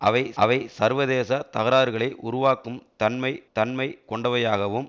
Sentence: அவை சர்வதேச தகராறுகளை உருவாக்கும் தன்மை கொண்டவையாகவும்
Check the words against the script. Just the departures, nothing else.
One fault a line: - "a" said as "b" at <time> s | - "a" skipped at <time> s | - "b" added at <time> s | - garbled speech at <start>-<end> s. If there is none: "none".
- "அவை" added at 0.4 s
- "தன்மை" added at 3.5 s